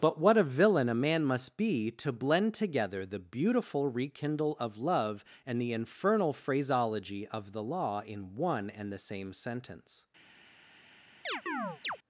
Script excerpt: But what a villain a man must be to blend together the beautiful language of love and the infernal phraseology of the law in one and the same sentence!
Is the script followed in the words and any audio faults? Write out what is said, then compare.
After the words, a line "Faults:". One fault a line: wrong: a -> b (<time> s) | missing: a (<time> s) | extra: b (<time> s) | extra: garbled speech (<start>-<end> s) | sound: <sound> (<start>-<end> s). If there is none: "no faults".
But what a villain a man must be to blend together the beautiful rekindle of love and the infernal phraseology of the law in one and the same sentence!
Faults:
wrong: language -> rekindle (3.9 s)
sound: chirp (11.2-12.0 s)